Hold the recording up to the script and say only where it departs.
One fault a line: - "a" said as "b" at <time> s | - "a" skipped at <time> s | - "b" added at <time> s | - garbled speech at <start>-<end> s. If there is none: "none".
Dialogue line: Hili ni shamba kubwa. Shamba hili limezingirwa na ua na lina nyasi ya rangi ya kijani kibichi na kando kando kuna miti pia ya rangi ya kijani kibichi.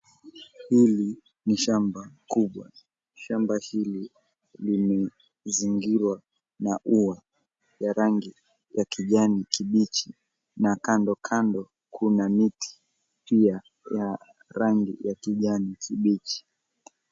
- "na lina nyasi" skipped at 7.2 s